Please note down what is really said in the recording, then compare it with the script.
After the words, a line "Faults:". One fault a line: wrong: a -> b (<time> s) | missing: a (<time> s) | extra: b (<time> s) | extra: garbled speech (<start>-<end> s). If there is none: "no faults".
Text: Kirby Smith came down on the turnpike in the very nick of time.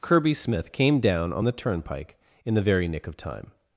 Kirby Smith came down on the turnpike in the very nick of time.
Faults:
no faults